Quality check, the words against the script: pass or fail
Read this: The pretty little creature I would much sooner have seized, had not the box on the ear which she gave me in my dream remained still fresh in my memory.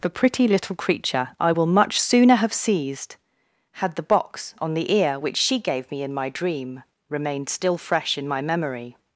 fail